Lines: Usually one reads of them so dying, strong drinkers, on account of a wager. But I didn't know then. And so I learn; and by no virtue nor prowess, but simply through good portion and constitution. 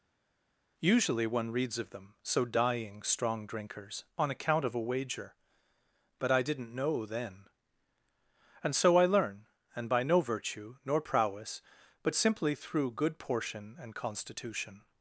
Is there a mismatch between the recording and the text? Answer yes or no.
no